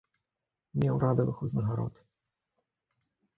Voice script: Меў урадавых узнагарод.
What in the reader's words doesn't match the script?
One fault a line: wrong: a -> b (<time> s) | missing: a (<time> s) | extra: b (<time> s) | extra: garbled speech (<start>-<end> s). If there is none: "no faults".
no faults